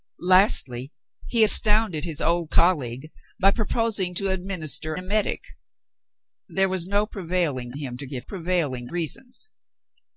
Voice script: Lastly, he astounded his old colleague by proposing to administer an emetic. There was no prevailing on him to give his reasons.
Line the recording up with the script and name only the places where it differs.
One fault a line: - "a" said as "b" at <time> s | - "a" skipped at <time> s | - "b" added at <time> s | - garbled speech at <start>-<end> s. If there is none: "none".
- "an" skipped at 4.9 s
- "on" skipped at 7.7 s
- "his" said as "prevailing" at 8.2 s